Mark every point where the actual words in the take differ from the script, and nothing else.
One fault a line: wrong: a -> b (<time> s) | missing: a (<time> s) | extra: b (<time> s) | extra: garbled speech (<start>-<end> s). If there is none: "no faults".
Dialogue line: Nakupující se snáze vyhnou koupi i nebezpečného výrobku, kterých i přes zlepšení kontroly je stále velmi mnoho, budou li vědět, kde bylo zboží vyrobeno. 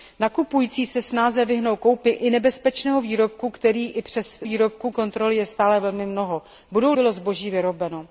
wrong: zlepšení -> výrobku (4.4 s)
missing: li vědět kde (6.9 s)